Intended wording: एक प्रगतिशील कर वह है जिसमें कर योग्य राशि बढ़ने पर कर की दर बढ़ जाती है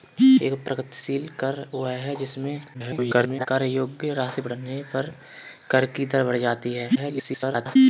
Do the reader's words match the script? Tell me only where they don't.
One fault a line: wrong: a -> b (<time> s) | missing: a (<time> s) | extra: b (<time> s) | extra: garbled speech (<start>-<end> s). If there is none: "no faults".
extra: garbled speech (2.7-3.5 s)
extra: garbled speech (6.9-7.8 s)